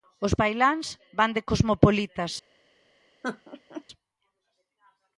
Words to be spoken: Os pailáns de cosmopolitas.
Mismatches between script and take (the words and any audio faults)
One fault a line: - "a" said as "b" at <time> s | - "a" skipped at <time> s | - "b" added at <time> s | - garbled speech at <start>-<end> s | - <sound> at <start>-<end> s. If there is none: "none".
- "van" added at 1.2 s
- laugh at 3.2-3.8 s